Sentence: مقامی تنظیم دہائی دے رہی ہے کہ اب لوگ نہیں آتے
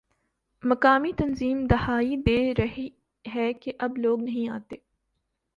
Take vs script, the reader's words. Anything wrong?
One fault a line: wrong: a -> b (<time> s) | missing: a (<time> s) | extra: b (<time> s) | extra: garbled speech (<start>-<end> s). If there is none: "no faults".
no faults